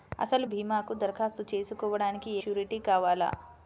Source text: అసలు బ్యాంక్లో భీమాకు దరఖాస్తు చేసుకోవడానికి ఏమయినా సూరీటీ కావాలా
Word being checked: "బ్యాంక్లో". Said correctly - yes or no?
no